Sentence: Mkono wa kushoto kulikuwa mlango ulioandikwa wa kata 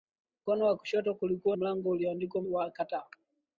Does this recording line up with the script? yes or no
yes